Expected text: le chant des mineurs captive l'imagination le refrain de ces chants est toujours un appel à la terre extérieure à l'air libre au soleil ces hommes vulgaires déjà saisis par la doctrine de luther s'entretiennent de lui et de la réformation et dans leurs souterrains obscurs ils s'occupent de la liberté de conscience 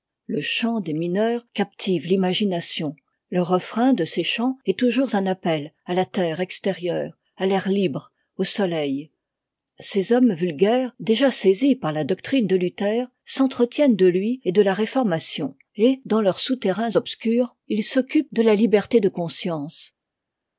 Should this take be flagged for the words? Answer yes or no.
no